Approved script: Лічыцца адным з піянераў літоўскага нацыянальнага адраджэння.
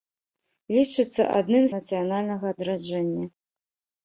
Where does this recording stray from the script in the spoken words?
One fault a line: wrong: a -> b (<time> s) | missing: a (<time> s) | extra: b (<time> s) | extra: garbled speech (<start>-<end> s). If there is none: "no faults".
missing: з піянераў літоўскага (1.7 s)